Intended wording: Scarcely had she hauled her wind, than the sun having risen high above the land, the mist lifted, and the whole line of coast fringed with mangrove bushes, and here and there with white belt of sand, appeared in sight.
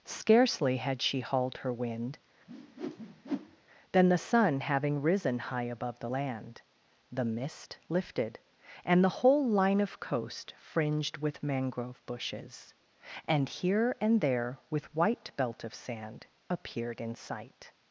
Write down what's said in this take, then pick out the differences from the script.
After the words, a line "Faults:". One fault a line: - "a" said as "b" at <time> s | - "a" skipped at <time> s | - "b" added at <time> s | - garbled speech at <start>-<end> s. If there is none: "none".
Scarcely had she hauled her wind, than the sun having risen high above the land, the mist lifted, and the whole line of coast fringed with mangrove bushes, and here and there with white belt of sand, appeared in sight.
Faults:
none